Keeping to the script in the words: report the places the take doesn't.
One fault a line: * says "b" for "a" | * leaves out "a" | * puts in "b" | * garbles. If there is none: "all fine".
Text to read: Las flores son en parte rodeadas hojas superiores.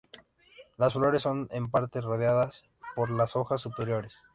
* puts in "por las"